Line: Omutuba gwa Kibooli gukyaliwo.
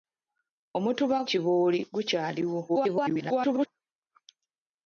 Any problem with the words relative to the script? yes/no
yes